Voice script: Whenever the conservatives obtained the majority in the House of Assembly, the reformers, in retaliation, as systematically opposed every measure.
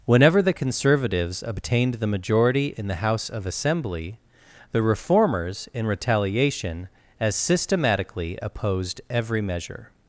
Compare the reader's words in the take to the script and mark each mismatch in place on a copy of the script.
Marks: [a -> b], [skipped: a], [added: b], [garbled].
Whenever the conservatives obtained the majority in the House of Assembly, the reformers, in retaliation, as systematically opposed every measure.